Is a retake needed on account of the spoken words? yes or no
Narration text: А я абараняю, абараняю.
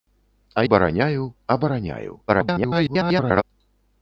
yes